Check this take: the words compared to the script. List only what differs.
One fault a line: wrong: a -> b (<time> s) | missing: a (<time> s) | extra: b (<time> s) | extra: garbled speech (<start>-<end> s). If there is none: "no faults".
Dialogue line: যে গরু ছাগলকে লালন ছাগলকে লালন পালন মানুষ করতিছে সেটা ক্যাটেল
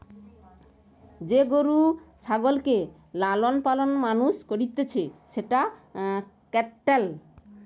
missing: ছাগলকে লালন (3.5 s)